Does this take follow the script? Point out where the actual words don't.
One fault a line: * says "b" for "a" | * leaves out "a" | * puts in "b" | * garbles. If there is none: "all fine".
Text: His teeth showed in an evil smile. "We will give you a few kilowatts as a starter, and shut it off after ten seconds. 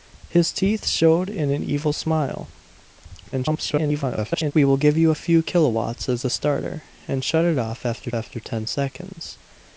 * garbles
* puts in "after"